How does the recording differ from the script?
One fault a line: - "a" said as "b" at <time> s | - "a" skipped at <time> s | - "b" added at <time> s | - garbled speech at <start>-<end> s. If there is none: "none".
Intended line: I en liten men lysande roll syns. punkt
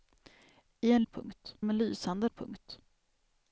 - "liten" said as "punkt" at 1.1 s
- "roll syns" skipped at 2.3 s